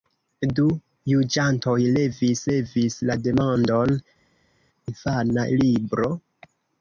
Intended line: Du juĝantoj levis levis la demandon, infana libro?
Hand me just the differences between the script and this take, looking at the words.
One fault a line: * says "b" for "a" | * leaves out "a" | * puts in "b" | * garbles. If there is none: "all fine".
all fine